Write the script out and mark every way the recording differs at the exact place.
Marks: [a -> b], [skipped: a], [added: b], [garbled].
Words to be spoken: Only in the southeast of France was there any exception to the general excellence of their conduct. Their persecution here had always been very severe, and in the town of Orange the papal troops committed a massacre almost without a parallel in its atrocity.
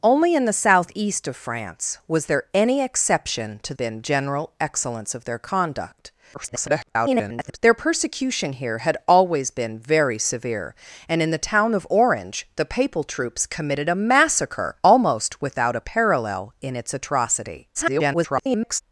Only in the southeast of France was there any exception to [the -> been] general excellence of their conduct. [garbled] Their persecution here had always been very severe, and in the town of Orange the papal troops committed a massacre almost without a parallel in its atrocity. [garbled]